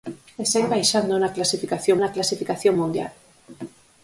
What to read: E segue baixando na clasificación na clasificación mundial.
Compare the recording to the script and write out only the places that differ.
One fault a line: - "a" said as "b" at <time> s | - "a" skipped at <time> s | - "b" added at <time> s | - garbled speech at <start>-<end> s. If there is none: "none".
none